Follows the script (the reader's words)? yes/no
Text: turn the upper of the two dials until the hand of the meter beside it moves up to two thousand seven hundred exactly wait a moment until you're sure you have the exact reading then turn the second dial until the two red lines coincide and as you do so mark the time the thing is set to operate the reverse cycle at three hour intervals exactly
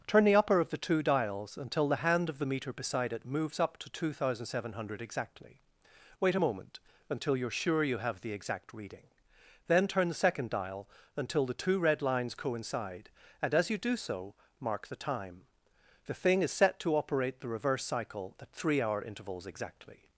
yes